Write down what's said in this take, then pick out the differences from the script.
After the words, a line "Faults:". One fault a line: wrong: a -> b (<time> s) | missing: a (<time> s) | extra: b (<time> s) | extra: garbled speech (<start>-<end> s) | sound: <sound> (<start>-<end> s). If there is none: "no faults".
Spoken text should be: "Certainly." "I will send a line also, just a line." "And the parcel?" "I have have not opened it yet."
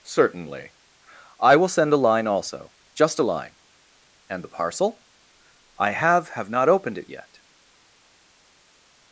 "Certainly." "I will send a line also, just a line." "And the parcel?" "I have have not opened it yet."
Faults:
no faults